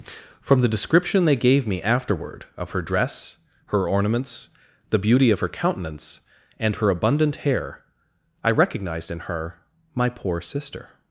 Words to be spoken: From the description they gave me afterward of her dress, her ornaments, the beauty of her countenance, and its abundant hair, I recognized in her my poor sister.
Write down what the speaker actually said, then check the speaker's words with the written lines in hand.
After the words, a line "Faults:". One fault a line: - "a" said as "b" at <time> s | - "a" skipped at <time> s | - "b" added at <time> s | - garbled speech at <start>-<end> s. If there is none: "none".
From the description they gave me afterward of her dress, her ornaments, the beauty of her countenance, and her abundant hair, I recognized in her my poor sister.
Faults:
- "its" said as "her" at 6.8 s